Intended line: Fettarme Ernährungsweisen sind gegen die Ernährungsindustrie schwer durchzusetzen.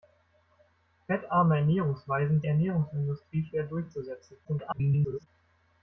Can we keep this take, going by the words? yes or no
no